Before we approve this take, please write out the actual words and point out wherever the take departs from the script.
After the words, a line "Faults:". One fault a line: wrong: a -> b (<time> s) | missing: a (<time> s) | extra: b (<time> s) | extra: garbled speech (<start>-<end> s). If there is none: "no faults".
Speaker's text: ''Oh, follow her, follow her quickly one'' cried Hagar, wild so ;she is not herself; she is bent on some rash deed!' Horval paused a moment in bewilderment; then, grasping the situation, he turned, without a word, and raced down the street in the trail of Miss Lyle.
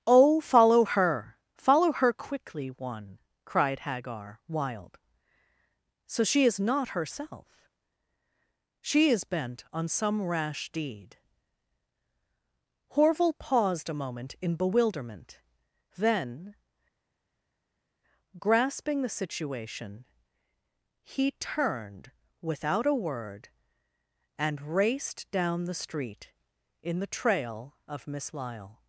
''Oh, follow her, follow her quickly one'' cried Hagar, wild so ;she is not herself; she is bent on some rash deed!' Horval paused a moment in bewilderment; then, grasping the situation, he turned, without a word, and raced down the street in the trail of Miss Lyle.
Faults:
no faults